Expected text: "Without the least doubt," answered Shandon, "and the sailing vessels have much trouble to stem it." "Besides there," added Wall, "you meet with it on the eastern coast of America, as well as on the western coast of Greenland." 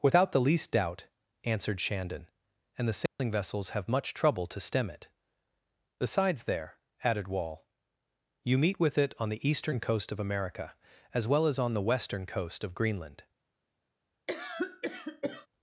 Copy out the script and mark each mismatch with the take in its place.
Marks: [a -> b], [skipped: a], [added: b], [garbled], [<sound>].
"Without the least doubt," answered Shandon, "and the sailing [dropout] vessels have much trouble to stem it." "Besides there," added Wall, "you meet with it on the eastern coast of America, as well as on the western coast of Greenland." [cough]